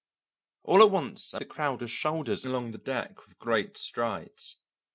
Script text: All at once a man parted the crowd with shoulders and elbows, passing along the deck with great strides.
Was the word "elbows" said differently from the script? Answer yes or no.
yes